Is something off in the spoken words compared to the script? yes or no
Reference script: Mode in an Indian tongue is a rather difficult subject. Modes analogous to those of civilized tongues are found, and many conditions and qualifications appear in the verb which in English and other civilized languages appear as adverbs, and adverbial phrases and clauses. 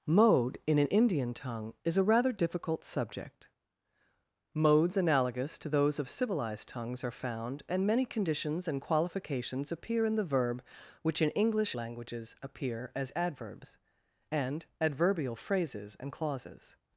yes